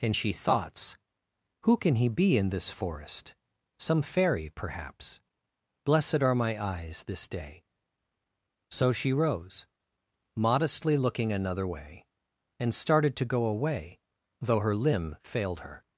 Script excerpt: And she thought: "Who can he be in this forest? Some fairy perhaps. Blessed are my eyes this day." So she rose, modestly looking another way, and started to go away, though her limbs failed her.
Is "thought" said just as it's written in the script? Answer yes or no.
no